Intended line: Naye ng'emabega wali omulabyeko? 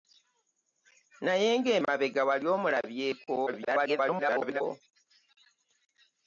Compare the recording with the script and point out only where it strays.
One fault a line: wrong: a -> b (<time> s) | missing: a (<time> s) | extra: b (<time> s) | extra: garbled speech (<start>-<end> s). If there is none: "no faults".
extra: garbled speech (3.5-4.6 s)